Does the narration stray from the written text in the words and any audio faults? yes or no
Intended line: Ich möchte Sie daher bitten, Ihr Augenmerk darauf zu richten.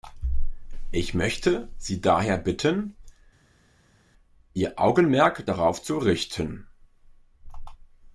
no